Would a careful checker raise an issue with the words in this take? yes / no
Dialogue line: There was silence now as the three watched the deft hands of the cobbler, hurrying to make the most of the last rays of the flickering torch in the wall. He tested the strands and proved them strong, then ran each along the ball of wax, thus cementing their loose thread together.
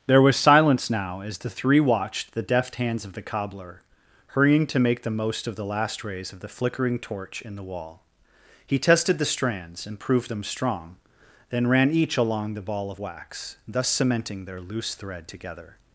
no